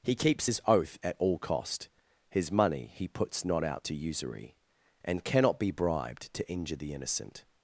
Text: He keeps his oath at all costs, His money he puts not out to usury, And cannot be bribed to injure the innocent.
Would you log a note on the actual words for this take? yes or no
yes